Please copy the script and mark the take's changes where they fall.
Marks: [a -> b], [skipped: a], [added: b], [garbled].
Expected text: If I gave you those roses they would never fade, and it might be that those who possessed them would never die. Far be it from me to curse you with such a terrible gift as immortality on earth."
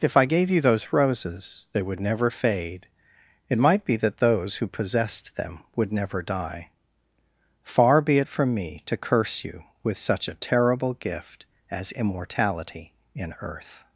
If I gave you those roses they would never fade, [skipped: and] it might be that those who possessed them would never die. Far be it from me to curse you with such a terrible gift as immortality [on -> in] earth."